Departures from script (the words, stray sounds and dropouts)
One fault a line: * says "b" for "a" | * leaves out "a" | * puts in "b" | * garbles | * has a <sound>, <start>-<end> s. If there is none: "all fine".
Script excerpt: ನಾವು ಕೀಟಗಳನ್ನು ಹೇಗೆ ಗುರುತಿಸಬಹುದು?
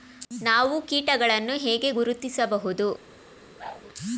* has a whoosh, 3.6-3.8 s